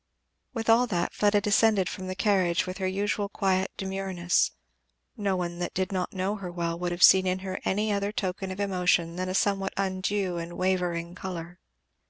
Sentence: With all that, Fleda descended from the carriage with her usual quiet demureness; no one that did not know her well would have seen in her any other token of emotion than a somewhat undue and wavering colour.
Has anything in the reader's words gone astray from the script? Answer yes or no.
no